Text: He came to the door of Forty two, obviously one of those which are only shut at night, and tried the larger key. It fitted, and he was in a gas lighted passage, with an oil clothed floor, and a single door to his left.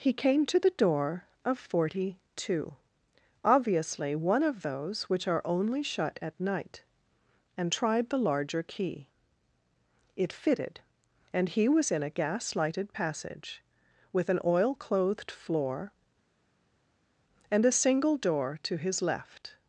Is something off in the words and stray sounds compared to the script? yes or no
no